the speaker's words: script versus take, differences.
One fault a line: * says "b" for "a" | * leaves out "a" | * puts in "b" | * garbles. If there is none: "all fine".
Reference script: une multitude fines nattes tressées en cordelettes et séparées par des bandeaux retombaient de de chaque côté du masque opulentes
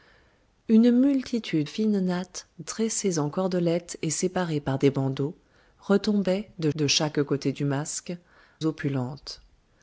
all fine